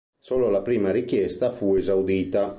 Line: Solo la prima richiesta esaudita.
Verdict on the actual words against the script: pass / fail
fail